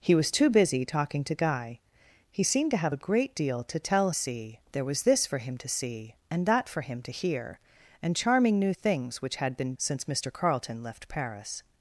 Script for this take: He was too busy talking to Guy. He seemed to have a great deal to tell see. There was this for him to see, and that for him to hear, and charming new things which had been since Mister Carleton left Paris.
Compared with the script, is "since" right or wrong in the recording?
right